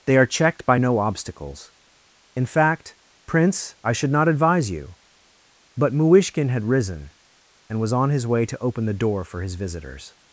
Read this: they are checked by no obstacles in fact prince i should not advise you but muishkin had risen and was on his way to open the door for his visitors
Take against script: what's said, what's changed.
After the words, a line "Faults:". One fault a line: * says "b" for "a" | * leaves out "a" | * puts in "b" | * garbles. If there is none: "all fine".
they are checked by no obstacles in fact prince i should not advise you but muishkin had risen and was on his way to open the door for his visitors
Faults:
all fine